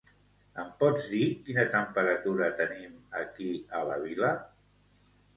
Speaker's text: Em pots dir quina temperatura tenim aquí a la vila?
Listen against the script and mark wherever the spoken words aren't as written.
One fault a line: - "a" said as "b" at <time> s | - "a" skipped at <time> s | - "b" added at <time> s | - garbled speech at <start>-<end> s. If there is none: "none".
none